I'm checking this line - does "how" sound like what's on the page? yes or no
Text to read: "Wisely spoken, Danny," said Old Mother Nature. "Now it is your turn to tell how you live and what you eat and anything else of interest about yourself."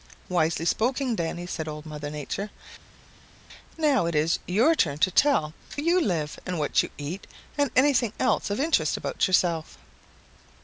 no